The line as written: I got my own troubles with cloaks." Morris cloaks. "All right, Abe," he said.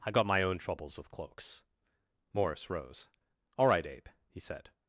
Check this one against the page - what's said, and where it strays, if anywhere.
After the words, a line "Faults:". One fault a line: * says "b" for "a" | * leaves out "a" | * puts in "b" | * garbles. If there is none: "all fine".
I got my own troubles with cloaks." Morris rose. "All right, Abe," he said.
Faults:
* says "rose" for "cloaks"